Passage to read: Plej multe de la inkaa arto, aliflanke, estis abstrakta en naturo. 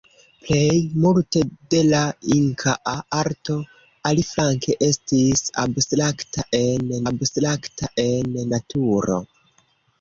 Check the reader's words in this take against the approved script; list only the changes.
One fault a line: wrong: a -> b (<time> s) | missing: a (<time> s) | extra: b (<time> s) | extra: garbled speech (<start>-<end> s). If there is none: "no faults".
extra: abstrakta en (7.1 s)